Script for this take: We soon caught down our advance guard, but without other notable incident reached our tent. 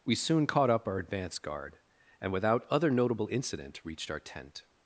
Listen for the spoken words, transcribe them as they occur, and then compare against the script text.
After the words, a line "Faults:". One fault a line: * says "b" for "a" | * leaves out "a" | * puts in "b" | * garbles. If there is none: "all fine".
We soon caught up our advance guard, and without other notable incident reached our tent.
Faults:
* says "up" for "down"
* says "and" for "but"